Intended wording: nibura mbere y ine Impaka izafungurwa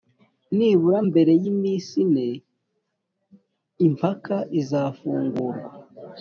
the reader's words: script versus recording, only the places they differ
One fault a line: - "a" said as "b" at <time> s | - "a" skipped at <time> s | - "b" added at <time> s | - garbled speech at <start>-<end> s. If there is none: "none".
- "iminsi" added at 1.5 s